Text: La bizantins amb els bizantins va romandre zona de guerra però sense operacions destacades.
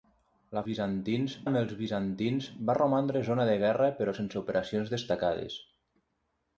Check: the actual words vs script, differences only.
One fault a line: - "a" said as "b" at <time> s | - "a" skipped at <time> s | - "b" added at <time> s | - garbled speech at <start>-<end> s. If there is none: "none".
none